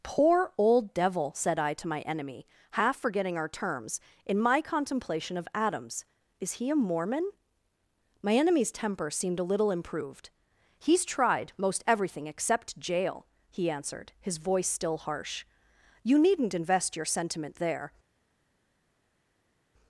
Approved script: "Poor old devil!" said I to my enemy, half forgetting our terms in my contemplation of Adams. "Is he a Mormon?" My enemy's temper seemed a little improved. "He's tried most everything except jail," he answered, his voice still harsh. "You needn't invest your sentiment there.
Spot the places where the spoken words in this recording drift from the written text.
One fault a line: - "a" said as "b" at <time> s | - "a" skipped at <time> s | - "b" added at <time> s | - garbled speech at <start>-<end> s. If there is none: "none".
none